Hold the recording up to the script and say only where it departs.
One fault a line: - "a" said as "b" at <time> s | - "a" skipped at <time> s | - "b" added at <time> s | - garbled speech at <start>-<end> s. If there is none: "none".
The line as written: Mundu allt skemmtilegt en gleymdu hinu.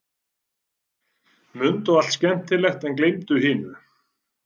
none